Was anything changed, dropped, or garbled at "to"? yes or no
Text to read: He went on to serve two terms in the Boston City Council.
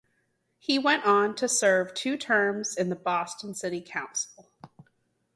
no